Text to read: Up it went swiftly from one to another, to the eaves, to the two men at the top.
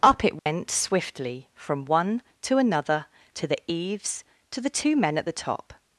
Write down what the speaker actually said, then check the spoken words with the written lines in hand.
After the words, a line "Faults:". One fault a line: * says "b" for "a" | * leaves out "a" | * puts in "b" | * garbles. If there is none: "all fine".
Up it went swiftly from one to another, to the eaves, to the two men at the top.
Faults:
all fine